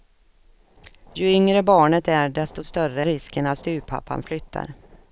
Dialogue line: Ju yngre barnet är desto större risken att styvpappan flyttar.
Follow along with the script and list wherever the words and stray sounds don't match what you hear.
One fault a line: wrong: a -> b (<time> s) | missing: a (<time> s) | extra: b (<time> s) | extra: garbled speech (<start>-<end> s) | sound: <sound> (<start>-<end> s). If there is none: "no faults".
no faults